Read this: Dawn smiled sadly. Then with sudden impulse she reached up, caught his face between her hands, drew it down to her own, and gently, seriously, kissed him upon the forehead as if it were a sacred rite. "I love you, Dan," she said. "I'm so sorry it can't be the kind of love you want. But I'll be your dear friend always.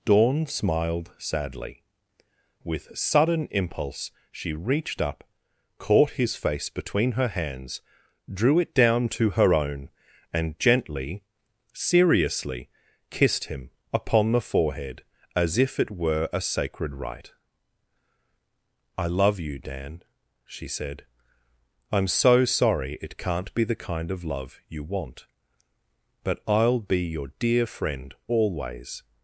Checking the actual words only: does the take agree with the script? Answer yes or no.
no